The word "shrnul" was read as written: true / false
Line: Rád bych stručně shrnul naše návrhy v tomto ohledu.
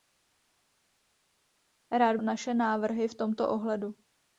false